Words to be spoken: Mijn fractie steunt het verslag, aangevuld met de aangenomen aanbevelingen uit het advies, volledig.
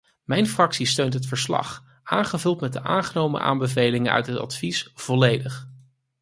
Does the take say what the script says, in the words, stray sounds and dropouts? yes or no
yes